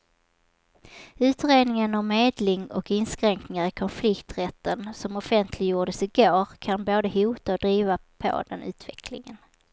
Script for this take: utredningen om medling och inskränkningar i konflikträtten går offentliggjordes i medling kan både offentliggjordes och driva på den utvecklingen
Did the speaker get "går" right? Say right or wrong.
wrong